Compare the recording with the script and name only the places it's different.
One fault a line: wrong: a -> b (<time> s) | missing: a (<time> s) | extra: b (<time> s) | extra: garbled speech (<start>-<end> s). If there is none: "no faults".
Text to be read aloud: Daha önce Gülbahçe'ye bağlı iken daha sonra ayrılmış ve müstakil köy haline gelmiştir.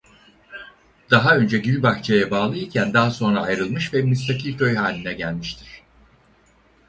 no faults